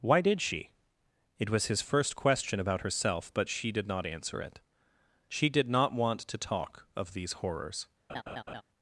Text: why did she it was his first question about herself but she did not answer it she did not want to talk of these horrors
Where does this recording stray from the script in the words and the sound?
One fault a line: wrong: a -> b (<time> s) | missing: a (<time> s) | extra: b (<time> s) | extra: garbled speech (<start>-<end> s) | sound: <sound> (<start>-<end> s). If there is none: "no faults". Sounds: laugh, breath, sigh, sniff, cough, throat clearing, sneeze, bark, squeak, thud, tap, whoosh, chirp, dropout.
sound: laugh (8.1-8.6 s)